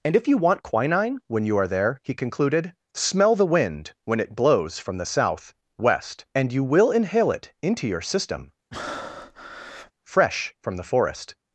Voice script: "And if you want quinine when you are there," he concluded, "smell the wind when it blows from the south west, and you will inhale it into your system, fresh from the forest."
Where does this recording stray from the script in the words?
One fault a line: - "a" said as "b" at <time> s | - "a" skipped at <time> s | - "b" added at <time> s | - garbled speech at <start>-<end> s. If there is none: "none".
none